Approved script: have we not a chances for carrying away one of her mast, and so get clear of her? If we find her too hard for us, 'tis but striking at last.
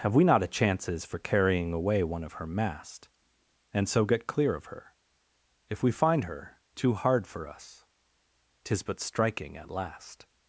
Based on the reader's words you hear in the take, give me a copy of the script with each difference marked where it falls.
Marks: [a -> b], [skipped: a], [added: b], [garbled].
have we not a chances for carrying away one of her mast, and so get clear of her? If we find her too hard for us, 'tis but striking at last.